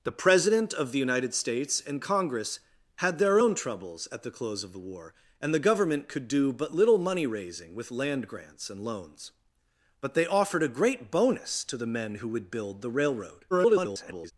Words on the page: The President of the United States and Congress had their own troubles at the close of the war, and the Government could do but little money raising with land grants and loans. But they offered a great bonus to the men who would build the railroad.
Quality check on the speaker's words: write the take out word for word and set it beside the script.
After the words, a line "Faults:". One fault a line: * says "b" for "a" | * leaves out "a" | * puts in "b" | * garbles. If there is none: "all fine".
The President of the United States and Congress had their own troubles at the close of the war, and the Government could do but little money raising with land grants and loans. But they offered a great bonus to the men who would build the railroad. [garbled]
Faults:
* garbles